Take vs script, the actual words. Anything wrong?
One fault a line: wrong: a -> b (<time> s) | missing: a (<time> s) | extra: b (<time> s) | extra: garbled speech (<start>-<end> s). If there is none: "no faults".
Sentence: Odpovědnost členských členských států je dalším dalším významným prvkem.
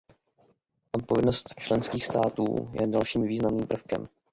missing: členských (2.0 s)
missing: dalším (3.2 s)